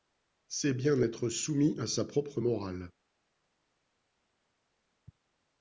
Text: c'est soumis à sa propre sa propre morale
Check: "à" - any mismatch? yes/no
no